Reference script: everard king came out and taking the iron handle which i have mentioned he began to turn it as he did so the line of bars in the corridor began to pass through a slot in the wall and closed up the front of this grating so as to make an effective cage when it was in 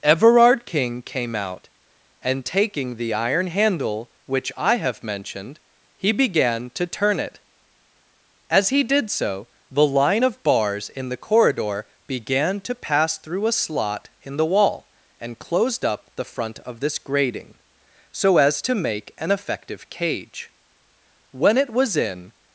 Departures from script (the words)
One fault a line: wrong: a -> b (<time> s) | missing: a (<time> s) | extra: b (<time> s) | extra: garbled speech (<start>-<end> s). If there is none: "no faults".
no faults